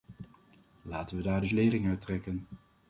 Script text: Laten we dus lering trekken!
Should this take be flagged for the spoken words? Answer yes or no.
yes